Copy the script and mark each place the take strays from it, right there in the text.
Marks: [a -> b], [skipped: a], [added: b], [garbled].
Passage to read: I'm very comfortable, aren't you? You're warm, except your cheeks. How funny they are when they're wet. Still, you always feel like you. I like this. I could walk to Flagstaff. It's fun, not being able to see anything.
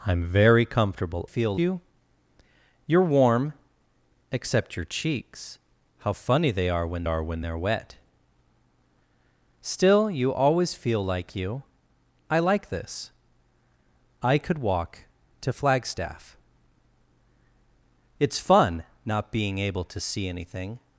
I'm very comfortable, [aren't -> feel] you? You're warm, except your cheeks. How funny they are when [added: are when] they're wet. Still, you always feel like you. I like this. I could walk to Flagstaff. It's fun, not being able to see anything.